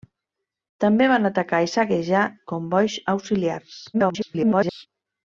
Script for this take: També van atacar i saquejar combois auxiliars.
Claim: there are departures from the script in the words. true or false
true